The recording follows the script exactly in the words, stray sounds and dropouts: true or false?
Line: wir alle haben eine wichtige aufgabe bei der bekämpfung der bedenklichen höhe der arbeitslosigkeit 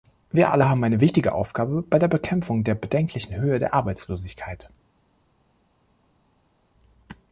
true